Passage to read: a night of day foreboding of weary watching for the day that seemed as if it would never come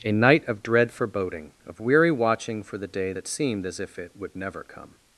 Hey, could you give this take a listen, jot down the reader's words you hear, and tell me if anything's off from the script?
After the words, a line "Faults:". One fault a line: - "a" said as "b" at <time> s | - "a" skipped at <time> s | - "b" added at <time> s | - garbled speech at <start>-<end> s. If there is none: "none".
a night of dread foreboding of weary watching for the day that seemed as if it would never come
Faults:
- "day" said as "dread" at 0.6 s